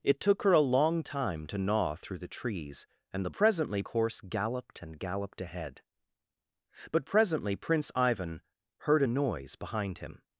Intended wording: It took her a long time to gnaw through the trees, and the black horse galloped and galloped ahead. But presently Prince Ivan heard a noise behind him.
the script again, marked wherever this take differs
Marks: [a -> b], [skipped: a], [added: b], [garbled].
It took her a long time to gnaw through the trees, and the [black -> presently] horse galloped and galloped ahead. But presently Prince Ivan heard a noise behind him.